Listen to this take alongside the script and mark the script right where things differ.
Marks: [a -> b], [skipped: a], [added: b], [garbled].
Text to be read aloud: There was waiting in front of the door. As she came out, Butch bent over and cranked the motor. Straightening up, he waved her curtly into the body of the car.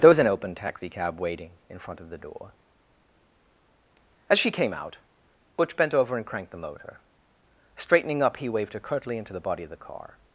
There was [added: an open taxicab] waiting in front of the door. As she came out, Butch bent over and cranked the motor. Straightening up, he waved her curtly into the body of the car.